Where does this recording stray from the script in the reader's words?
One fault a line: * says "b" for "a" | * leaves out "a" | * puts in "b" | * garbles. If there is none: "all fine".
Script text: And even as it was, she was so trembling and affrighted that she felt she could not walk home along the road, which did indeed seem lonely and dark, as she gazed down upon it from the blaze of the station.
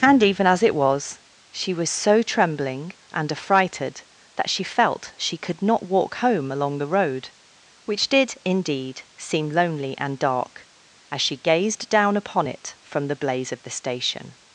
all fine